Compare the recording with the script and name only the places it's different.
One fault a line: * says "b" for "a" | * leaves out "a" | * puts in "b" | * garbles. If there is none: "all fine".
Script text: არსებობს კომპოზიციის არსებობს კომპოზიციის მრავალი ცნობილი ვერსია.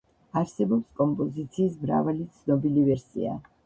* leaves out "არსებობს კომპოზიციის"